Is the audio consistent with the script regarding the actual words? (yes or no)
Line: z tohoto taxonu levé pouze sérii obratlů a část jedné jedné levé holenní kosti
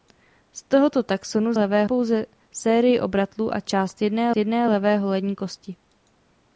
yes